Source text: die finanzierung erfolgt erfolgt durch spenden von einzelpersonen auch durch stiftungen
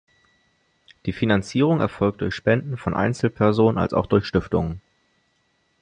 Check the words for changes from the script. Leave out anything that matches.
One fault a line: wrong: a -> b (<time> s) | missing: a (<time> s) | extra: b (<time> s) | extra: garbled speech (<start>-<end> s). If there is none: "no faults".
missing: erfolgt (2.2 s)
extra: als (3.8 s)